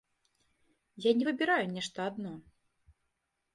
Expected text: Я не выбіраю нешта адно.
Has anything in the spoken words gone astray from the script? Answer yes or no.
no